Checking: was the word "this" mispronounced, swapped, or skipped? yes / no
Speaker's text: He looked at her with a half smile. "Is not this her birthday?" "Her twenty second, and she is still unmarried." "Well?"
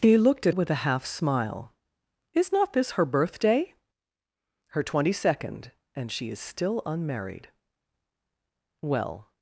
no